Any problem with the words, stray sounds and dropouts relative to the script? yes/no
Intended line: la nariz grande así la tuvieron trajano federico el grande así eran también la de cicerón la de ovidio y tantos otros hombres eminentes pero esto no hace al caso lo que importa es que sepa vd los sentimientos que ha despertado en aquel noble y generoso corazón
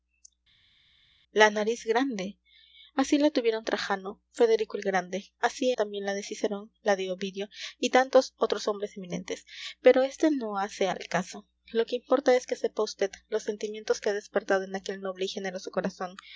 yes